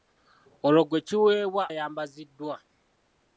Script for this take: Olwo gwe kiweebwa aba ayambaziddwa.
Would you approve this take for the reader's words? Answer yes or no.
no